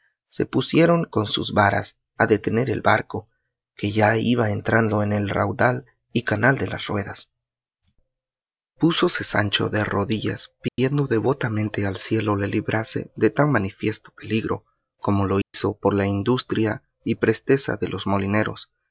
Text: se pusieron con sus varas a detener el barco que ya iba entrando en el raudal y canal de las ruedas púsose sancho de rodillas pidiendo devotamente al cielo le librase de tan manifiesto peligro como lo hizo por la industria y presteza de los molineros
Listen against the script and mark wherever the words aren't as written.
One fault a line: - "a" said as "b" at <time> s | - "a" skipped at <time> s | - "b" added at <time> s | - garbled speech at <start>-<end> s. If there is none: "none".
none